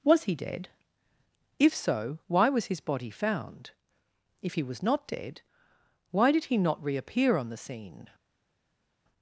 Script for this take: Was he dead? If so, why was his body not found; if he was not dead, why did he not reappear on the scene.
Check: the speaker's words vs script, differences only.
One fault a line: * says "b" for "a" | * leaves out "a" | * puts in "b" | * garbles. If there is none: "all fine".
* leaves out "not"